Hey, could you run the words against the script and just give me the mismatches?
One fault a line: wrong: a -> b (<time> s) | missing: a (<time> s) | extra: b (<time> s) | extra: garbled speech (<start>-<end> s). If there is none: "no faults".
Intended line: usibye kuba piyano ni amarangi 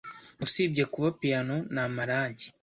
no faults